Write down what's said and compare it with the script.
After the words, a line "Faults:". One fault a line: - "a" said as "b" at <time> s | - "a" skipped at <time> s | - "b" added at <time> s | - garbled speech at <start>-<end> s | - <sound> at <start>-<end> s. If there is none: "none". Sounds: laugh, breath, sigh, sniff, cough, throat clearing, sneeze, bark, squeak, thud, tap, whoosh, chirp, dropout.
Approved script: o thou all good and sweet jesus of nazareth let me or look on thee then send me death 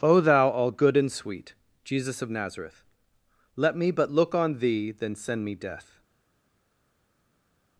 o thou all good and sweet jesus of nazareth let me but look on thee then send me death
Faults:
- "or" said as "but" at 3.9 s